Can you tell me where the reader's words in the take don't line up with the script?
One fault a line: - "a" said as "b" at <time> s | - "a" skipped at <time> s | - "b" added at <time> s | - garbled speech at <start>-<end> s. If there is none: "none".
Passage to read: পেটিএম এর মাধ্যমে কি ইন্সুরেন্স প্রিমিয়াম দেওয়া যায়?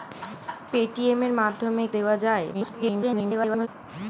- "কি ইন্সুরেন্স প্রিমিয়াম" skipped at 1.9 s
- garbled speech at 2.5-3.7 s